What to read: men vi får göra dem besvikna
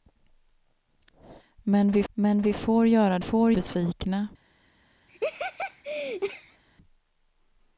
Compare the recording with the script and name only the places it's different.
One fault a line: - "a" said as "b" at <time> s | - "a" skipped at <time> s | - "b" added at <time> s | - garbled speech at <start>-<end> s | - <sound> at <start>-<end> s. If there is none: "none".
- "men vi" added at 2.1 s
- "dem" said as "får" at 3.2 s
- laugh at 5.1-6.6 s